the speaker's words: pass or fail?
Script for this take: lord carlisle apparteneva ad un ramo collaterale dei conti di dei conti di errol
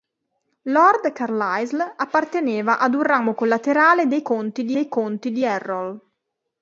pass